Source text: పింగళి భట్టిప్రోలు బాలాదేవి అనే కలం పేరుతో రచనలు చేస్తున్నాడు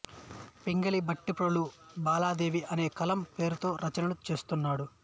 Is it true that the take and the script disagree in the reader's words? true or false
false